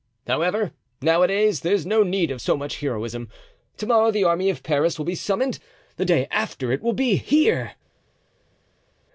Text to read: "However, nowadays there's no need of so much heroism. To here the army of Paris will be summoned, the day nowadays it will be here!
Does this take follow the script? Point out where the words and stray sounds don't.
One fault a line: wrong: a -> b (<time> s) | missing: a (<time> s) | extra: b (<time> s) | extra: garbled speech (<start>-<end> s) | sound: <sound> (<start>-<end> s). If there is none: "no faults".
wrong: here -> morrow (3.9 s)
wrong: nowadays -> after (6.3 s)